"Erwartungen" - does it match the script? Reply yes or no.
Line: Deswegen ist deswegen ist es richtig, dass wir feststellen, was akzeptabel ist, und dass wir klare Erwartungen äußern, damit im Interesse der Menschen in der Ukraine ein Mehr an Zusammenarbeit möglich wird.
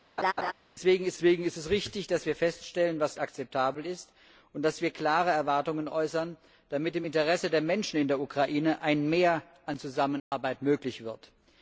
yes